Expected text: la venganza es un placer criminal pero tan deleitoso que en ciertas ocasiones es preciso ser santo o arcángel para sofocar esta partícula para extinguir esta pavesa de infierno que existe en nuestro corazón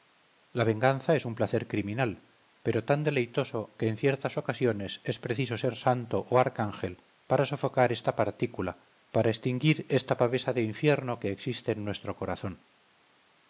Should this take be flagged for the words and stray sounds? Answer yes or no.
no